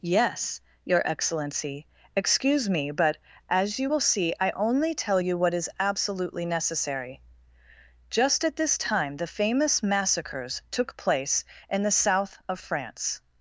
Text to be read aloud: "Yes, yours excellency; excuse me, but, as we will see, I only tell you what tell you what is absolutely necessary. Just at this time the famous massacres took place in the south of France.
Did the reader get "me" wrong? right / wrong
right